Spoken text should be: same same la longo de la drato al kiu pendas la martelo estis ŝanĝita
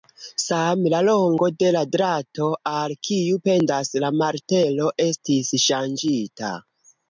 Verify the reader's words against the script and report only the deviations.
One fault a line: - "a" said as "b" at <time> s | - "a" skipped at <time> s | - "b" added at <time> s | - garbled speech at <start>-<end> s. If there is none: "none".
- "same" skipped at 0.9 s